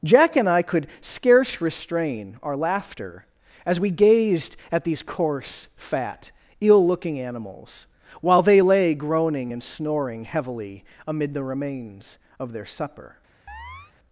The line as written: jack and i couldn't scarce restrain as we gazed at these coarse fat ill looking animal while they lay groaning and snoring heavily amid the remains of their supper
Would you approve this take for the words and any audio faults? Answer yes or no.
no